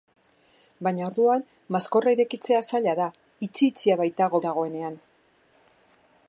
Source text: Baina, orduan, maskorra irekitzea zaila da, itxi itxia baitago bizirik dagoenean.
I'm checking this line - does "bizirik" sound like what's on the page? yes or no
no